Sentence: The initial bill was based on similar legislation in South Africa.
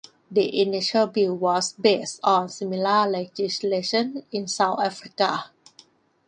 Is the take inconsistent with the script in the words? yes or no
no